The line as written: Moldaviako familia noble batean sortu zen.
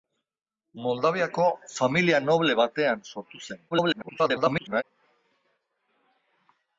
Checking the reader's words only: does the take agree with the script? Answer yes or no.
no